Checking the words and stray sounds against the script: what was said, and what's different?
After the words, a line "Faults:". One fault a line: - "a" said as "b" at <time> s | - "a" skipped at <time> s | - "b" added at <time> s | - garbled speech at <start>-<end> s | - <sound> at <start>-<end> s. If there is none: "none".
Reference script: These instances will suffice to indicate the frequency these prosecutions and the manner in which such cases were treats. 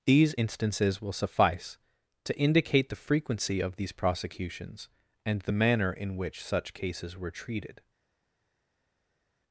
These instances will suffice to indicate the frequency of these prosecutions and the manner in which such cases were treated.
Faults:
- "of" added at 3.6 s
- "treats" said as "treated" at 7.3 s